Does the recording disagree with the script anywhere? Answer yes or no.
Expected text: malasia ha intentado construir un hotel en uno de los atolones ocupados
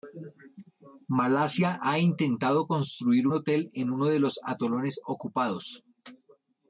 yes